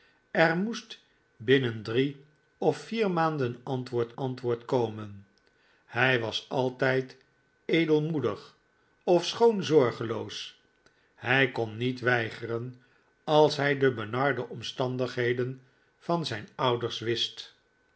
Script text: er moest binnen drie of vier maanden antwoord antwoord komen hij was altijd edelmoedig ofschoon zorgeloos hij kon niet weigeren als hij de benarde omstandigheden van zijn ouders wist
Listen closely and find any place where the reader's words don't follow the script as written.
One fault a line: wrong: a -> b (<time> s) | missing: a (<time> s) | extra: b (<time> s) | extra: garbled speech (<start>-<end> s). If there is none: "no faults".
no faults